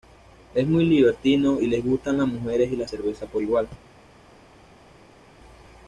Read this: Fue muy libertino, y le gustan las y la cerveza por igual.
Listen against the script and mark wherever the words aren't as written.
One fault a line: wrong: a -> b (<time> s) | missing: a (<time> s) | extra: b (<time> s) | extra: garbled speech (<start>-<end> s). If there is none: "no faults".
wrong: Fue -> Es (0.6 s)
extra: mujeres (2.3 s)